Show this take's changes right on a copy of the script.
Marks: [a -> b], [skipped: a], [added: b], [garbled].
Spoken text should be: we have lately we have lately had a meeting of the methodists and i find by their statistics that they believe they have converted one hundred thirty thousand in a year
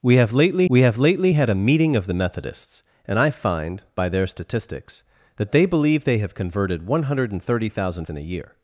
we have lately we have lately had a meeting of the methodists and i find by their statistics that they believe they have converted one hundred thirty thousand in a year